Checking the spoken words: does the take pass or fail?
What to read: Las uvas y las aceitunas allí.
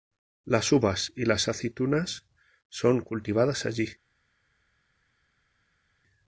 fail